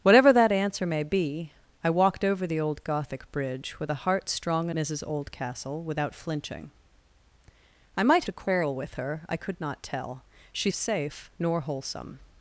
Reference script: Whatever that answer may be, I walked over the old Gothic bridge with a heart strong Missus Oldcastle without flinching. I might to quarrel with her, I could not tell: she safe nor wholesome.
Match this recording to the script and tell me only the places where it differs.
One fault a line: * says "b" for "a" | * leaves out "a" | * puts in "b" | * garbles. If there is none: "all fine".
all fine